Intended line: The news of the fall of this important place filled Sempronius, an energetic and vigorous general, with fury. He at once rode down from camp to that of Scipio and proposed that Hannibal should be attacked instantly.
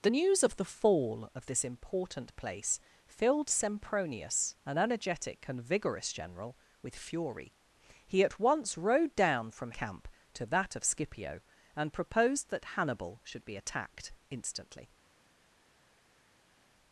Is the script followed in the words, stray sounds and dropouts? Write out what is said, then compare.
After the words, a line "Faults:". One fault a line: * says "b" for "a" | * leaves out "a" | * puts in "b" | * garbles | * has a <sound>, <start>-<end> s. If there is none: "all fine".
The news of the fall of this important place filled Sempronius, an energetic and vigorous general, with fury. He at once rode down from camp to that of Scipio and proposed that Hannibal should be attacked instantly.
Faults:
all fine